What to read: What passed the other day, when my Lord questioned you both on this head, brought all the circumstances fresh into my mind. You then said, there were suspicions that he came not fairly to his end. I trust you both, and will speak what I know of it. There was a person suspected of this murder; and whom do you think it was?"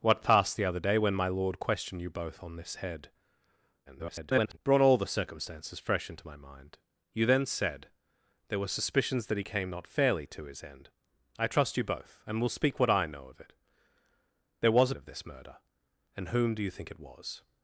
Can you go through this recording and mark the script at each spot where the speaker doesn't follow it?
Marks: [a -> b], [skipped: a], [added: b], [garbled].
What passed the other day, when my Lord questioned you both on this head, [garbled] brought all the circumstances fresh into my mind. You then said, there were suspicions that he came not fairly to his end. I trust you both, and will speak what I know of it. There was [skipped: a person suspected] of this murder; and whom do you think it was?"